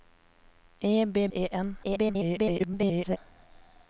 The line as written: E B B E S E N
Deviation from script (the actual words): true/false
true